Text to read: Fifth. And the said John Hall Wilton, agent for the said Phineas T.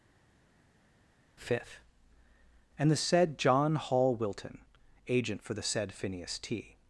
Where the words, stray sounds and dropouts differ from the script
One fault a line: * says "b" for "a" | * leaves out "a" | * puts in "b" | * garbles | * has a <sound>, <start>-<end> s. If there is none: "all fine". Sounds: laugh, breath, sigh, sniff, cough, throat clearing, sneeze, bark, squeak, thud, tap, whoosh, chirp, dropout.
all fine